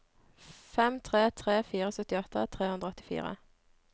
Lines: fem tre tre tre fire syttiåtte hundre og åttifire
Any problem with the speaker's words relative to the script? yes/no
yes